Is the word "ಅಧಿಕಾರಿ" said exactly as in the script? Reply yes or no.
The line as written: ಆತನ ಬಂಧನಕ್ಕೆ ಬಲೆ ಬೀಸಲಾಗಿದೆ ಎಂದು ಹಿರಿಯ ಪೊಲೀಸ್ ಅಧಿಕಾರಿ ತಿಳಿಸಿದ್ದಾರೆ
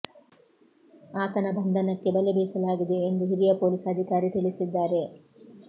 yes